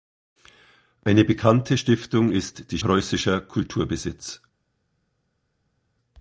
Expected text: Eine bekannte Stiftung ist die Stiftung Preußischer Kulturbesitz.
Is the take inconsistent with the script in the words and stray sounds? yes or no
yes